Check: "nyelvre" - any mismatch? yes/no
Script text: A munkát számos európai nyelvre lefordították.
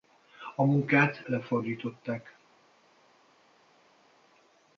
yes